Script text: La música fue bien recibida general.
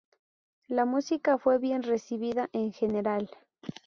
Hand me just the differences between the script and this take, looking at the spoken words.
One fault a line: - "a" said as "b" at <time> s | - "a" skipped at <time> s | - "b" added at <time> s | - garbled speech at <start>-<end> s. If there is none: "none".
- "en" added at 2.5 s